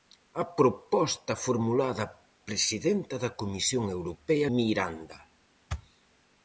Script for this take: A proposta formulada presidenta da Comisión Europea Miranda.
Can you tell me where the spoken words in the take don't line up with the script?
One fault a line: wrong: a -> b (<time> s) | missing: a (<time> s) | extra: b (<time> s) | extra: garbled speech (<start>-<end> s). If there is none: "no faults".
no faults